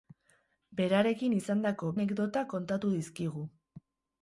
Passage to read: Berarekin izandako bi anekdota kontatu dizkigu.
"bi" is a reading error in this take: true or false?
true